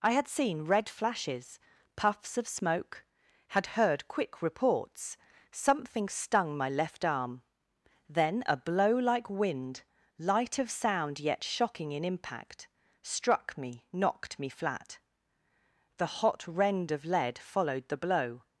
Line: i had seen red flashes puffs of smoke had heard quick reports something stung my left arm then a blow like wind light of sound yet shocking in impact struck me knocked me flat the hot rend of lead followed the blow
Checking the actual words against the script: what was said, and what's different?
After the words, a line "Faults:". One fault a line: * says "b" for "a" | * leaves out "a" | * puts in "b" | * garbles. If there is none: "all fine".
i had seen red flashes puffs of smoke had heard quick reports something stung my left arm then a blow like wind light of sound yet shocking in impact struck me knocked me flat the hot rend of lead followed the blow
Faults:
all fine